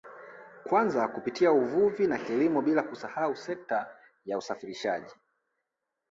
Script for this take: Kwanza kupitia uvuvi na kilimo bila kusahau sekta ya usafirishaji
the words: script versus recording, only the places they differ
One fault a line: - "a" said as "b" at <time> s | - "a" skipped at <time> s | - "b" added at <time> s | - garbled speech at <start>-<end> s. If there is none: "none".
none